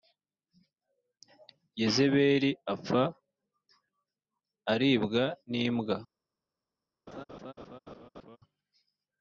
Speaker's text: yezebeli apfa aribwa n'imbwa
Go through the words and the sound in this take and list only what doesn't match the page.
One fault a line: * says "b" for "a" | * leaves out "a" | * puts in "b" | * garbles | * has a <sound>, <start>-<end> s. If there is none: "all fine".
* has a laugh, 7.1-8.4 s